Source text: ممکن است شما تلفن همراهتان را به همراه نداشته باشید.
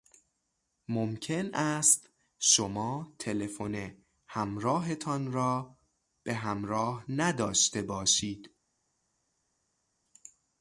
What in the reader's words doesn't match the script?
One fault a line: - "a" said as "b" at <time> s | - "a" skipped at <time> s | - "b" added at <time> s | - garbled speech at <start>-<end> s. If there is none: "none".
none